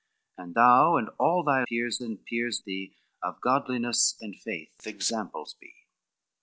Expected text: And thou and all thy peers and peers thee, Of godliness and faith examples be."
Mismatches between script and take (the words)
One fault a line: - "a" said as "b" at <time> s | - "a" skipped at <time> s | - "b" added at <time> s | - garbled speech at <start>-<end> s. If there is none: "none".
none